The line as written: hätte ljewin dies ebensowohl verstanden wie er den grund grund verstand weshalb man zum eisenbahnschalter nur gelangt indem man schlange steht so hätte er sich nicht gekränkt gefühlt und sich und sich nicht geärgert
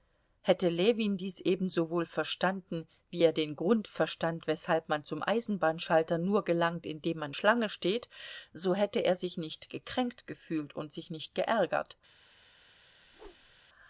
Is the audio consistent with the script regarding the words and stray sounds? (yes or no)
no